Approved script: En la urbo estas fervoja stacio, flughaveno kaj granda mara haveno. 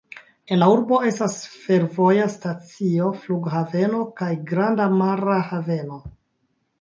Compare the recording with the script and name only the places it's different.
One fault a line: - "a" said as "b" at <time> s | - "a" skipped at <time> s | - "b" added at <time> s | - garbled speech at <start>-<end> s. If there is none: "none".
none